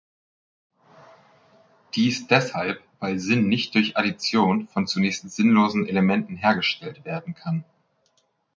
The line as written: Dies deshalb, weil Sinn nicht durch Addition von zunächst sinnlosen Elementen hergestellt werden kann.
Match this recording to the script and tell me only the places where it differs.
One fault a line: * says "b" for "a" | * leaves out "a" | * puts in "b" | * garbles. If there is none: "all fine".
all fine